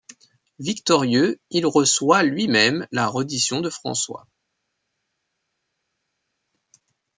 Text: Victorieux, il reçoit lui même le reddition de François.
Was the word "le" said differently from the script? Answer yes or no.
yes